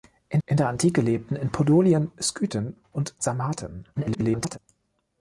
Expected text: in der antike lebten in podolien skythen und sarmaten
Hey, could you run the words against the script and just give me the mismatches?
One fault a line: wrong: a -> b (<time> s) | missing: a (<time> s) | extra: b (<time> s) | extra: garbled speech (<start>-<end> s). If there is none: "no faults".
extra: in (0.5 s)
extra: garbled speech (3.9-4.6 s)